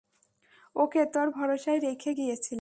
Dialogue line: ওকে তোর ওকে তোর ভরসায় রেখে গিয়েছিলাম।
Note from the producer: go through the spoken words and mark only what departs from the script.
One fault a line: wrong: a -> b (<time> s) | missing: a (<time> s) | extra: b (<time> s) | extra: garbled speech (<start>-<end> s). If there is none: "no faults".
missing: ওকে তোর (1.3 s)